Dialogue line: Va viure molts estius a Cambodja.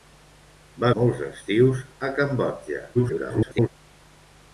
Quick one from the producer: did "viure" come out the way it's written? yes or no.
no